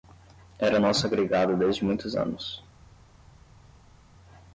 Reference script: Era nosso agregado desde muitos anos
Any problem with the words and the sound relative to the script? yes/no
no